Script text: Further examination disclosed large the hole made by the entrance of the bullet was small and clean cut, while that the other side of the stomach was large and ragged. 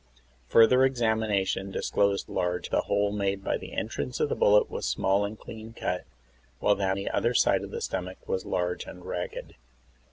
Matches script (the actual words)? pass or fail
pass